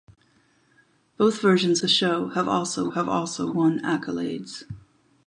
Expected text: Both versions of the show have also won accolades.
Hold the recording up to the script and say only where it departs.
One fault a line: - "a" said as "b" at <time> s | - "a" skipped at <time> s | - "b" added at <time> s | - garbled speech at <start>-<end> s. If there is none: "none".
- "of" skipped at 1.8 s
- "have also" added at 2.9 s